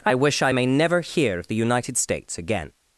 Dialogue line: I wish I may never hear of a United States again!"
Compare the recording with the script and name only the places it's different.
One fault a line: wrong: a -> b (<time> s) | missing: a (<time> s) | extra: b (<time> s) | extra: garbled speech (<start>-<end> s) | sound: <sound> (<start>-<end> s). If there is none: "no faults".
wrong: a -> the (1.5 s)